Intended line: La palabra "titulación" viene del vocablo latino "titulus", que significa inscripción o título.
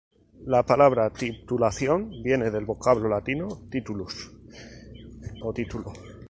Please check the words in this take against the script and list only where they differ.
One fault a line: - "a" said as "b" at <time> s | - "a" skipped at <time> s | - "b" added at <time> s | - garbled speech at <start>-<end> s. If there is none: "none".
- "que significa inscripción" skipped at 4.3 s